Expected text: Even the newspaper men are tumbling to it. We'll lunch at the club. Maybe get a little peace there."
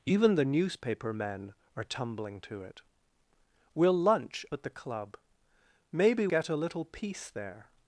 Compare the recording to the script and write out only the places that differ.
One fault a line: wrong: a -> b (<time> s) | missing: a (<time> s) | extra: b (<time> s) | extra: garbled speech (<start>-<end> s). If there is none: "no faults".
no faults